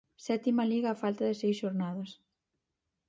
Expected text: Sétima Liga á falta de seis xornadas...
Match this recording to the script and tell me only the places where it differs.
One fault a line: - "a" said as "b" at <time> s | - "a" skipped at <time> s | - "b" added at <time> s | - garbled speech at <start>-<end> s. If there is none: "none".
none